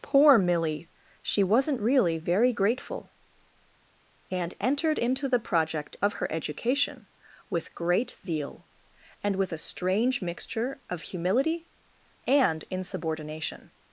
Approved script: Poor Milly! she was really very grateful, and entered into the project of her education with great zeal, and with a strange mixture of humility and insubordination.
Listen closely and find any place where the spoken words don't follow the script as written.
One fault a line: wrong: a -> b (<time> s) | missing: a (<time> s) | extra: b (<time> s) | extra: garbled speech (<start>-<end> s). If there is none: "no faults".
wrong: was -> wasn't (1.4 s)